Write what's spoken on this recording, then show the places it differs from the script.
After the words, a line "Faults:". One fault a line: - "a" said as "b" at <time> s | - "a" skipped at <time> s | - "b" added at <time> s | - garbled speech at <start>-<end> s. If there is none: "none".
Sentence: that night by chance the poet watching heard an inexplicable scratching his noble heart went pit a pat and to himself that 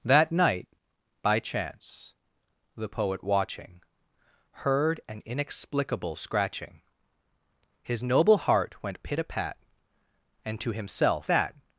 that night by chance the poet watching heard an inexplicable scratching his noble heart went pit a pat and to himself that
Faults:
none